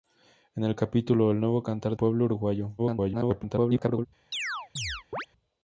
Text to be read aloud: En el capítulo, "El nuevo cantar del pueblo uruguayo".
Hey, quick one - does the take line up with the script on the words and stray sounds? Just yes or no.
no